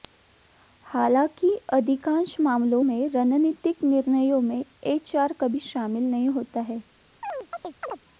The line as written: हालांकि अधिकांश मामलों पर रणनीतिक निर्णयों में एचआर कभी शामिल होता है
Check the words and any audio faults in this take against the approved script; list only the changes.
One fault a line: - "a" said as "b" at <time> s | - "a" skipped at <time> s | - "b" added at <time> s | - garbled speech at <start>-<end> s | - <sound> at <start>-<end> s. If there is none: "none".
- "पर" said as "में" at 2.8 s
- "नहीं" added at 6.0 s
- chirp at 7.2-8.0 s